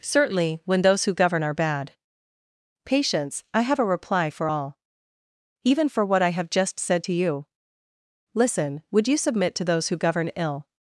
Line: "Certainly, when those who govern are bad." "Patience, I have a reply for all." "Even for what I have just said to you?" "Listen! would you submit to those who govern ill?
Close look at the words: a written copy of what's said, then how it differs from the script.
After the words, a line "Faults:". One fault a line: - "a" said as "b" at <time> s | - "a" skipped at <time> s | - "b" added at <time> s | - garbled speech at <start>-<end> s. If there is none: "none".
"Certainly, when those who govern are bad." "Patience, I have a reply for all." "Even for what I have just said to you?" "Listen! would you submit to those who govern ill?
Faults:
none